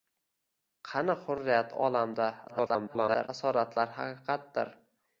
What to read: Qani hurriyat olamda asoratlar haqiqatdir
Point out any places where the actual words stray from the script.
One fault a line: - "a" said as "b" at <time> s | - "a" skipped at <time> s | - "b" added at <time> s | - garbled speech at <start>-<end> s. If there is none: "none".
- garbled speech at 2.5-3.3 s